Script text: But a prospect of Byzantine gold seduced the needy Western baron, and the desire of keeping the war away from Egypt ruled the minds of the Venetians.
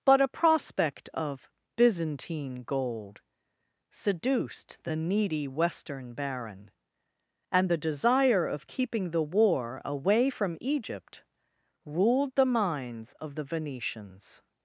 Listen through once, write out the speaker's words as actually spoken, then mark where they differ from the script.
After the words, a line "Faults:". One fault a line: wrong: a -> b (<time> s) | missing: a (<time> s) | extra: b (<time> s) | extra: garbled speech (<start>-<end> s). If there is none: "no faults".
But a prospect of Byzantine gold seduced the needy Western baron, and the desire of keeping the war away from Egypt ruled the minds of the Venetians.
Faults:
no faults